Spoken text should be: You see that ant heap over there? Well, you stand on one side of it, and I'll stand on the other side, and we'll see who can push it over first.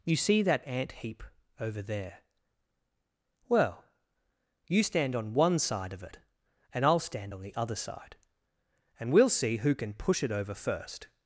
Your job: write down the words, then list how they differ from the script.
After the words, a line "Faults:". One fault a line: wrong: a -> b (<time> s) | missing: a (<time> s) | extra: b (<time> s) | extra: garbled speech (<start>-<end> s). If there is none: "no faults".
You see that ant heap over there? Well, you stand on one side of it, and I'll stand on the other side, and we'll see who can push it over first.
Faults:
no faults